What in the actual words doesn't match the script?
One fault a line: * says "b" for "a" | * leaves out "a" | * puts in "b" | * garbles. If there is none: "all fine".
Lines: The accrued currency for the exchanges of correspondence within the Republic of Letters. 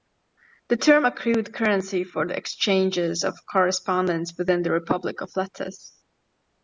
* puts in "term"